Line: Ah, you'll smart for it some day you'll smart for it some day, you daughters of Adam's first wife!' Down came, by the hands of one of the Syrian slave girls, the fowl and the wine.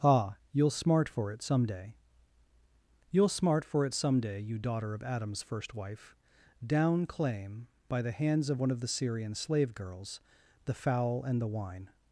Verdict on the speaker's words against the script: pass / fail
fail